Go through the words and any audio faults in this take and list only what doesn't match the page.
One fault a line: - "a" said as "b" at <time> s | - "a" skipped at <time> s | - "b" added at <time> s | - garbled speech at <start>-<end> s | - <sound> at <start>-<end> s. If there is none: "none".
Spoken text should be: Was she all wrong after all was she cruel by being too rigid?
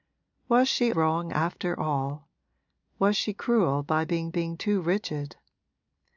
- "all" skipped at 0.9 s
- "being" added at 4.3 s